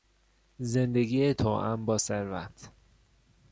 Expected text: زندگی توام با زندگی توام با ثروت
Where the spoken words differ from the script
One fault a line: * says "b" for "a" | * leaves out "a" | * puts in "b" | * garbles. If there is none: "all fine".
* leaves out "زندگی توام با"